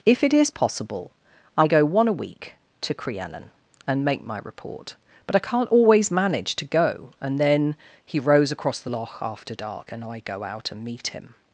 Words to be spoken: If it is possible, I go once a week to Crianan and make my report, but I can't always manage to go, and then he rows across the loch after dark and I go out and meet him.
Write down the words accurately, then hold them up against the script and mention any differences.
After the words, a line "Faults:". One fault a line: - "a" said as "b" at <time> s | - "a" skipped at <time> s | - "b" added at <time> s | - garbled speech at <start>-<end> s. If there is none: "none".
If it is possible, I go one a week to Crianan and make my report, but I can't always manage to go, and then he rows across the loch after dark and I go out and meet him.
Faults:
- "once" said as "one" at 1.8 s